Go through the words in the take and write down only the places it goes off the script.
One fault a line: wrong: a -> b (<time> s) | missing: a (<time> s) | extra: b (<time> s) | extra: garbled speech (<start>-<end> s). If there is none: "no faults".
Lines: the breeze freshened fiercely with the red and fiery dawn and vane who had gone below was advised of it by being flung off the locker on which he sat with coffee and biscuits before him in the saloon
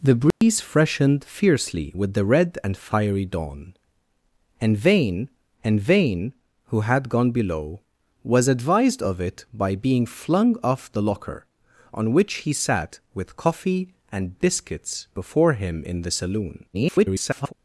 extra: and vane (5.6 s)
extra: garbled speech (16.7-17.5 s)